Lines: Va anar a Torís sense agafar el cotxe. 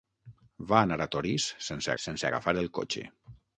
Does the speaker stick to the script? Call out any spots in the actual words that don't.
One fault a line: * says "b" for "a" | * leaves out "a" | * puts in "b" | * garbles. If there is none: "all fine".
* puts in "sense"